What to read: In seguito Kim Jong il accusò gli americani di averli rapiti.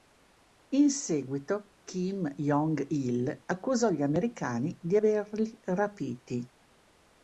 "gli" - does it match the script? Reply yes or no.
yes